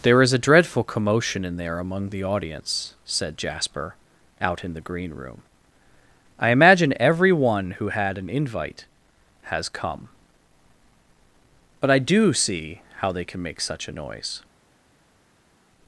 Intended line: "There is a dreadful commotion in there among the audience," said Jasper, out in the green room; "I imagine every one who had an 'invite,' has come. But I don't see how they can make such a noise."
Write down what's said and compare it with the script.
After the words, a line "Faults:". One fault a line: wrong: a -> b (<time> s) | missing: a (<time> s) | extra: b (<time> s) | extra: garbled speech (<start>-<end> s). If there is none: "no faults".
"There is a dreadful commotion in there among the audience," said Jasper, out in the green room; "I imagine every one who had an 'invite,' has come. But I do see how they can make such a noise."
Faults:
wrong: don't -> do (12.0 s)